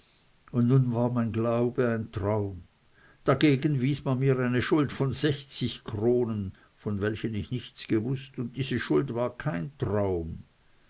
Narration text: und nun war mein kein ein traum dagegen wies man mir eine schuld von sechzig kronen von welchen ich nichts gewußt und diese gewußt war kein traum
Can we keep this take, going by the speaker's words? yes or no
no